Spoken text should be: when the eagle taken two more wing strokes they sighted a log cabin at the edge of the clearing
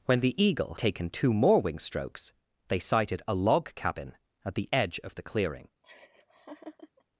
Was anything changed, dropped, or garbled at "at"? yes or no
no